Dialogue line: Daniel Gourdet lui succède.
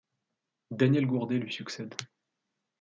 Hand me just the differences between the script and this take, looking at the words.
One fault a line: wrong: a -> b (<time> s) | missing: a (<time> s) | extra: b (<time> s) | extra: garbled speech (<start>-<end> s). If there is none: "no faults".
no faults